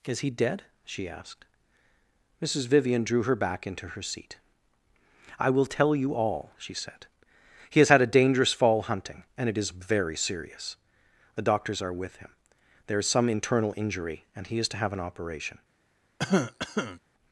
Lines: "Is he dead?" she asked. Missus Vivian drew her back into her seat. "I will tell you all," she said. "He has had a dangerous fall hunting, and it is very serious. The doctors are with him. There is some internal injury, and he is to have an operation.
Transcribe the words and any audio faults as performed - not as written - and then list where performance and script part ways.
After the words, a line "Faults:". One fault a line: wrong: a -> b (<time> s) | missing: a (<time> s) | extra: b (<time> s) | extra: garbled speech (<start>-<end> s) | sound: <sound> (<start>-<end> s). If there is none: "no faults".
"Is he dead?" she asked. Missus Vivian drew her back into her seat. "I will tell you all," she said. "He has had a dangerous fall hunting, and it is very serious. The doctors are with him. There is some internal injury, and he is to have an operation.
Faults:
sound: cough (16.2-17.0 s)